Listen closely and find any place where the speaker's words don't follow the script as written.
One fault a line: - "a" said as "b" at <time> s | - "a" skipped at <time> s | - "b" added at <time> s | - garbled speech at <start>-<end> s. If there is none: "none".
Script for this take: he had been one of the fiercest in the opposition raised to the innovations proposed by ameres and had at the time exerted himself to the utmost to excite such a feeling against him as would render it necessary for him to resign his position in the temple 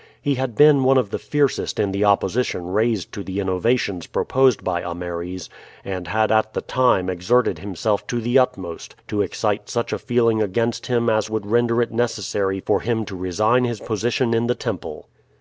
none